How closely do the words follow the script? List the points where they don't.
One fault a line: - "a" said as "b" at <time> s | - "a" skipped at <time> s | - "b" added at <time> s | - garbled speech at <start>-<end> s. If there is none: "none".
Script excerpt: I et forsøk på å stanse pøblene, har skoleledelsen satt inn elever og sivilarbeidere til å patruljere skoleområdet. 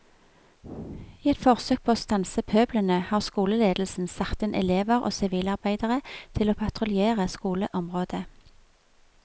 none